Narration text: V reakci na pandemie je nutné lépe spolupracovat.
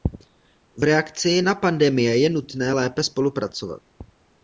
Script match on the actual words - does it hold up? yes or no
yes